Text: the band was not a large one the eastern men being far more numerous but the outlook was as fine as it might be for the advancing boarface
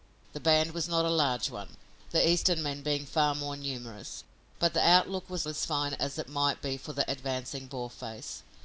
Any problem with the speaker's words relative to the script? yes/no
no